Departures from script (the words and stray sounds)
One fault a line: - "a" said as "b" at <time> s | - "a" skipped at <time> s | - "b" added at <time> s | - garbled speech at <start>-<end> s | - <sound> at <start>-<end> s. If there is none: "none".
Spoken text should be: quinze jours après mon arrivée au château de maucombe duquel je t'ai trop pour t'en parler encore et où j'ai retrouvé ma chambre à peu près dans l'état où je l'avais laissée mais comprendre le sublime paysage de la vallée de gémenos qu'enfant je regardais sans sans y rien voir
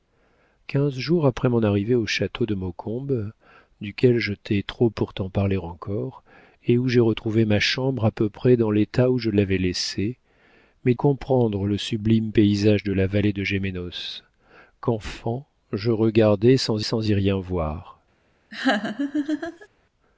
- laugh at 18.5-19.7 s